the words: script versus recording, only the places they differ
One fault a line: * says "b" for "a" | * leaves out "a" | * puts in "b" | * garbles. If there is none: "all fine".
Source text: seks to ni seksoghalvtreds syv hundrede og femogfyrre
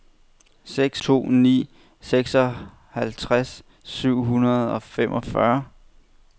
all fine